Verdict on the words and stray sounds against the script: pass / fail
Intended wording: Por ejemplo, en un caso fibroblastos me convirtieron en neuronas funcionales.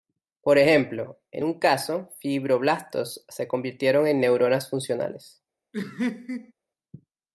fail